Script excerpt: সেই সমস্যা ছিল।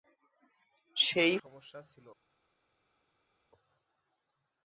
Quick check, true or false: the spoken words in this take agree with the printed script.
true